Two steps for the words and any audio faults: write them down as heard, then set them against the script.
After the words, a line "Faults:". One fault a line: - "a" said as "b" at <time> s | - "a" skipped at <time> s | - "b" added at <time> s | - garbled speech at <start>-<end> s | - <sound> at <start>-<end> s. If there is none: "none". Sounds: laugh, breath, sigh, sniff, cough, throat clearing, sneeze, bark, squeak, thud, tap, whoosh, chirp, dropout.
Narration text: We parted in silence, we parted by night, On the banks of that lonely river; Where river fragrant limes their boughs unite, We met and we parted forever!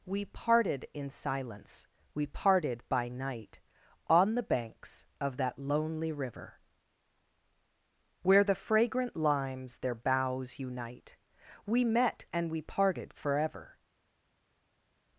We parted in silence, we parted by night, On the banks of that lonely river; Where the fragrant limes their boughs unite, We met and we parted forever!
Faults:
- "river" said as "the" at 8.4 s